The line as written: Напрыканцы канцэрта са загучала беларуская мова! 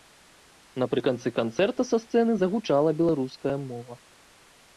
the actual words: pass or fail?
fail